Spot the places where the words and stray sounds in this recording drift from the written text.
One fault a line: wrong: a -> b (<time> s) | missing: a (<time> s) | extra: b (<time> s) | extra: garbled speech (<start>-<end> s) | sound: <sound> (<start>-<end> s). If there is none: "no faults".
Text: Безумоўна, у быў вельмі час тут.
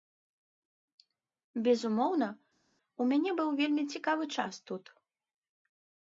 extra: мяне (3.1 s)
extra: цікавы (4.0 s)